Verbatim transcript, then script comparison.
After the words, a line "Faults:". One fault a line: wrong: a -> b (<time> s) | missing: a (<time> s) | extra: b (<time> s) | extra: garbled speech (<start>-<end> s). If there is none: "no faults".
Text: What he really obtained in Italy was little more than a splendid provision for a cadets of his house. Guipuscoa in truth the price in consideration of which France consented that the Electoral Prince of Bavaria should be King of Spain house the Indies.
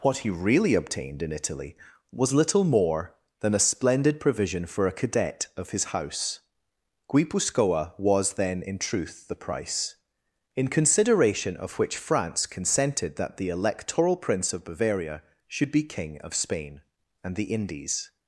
What he really obtained in Italy was little more than a splendid provision for a cadet of his house. Guipuscoa was then in truth the price in consideration of which France consented that the Electoral Prince of Bavaria should be King of Spain and the Indies.
Faults:
wrong: cadets -> cadet (4.9 s)
extra: was then (8.0 s)
wrong: house -> and (17.2 s)